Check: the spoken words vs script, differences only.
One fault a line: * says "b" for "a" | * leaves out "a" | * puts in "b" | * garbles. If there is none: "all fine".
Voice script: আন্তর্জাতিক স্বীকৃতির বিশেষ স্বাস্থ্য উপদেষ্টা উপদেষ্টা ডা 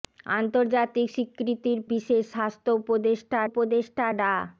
all fine